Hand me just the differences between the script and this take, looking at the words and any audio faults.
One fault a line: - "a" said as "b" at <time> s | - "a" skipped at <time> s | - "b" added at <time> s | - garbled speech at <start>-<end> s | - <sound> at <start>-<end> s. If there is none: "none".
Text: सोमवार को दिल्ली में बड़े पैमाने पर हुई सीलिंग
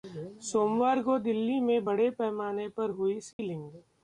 - dropout at 3.3-3.4 s